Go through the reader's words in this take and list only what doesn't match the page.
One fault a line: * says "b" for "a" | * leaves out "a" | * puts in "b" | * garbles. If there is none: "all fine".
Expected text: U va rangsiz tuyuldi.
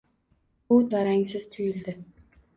all fine